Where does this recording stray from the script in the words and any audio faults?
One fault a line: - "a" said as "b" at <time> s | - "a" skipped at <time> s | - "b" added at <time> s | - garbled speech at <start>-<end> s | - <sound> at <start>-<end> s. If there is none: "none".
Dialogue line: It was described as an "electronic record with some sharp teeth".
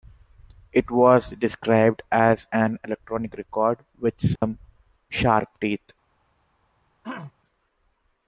- dropout at 4.4-4.4 s
- throat clearing at 7.0-7.3 s